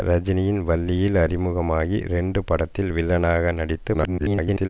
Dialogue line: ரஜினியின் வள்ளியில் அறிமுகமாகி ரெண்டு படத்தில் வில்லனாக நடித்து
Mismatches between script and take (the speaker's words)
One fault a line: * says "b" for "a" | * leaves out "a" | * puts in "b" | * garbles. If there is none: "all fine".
* garbles